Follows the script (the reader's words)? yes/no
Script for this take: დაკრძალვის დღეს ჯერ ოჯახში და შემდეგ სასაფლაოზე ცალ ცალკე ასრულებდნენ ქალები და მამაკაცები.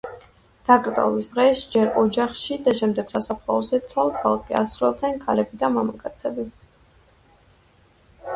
yes